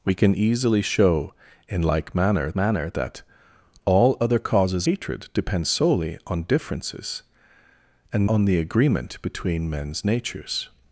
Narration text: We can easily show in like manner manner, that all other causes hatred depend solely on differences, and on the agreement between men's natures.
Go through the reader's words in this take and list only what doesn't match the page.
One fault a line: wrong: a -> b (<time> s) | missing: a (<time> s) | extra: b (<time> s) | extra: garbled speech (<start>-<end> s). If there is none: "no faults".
no faults